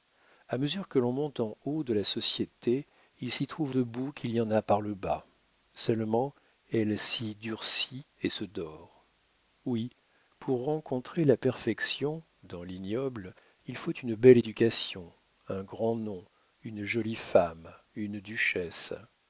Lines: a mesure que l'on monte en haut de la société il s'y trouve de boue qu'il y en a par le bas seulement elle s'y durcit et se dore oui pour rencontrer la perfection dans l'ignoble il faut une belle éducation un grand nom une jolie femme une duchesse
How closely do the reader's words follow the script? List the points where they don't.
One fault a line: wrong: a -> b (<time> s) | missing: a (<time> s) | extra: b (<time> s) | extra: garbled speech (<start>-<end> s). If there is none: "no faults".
no faults